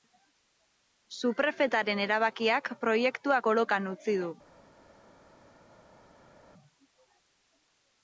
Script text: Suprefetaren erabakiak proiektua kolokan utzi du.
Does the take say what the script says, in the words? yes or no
yes